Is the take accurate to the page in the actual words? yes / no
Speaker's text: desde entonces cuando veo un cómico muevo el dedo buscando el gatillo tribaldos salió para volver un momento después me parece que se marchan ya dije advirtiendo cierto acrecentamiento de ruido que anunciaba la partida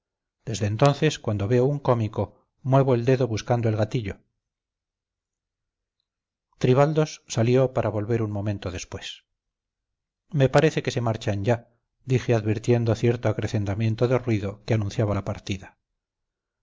yes